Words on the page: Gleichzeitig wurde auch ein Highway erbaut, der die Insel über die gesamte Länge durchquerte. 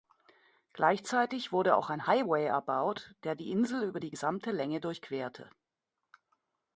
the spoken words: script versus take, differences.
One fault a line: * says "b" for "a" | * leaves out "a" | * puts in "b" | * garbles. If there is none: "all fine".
all fine